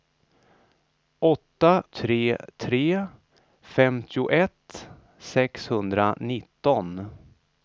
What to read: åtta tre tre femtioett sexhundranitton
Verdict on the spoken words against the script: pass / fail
pass